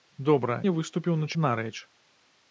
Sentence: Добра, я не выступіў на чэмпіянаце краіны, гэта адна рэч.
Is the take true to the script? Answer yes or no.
no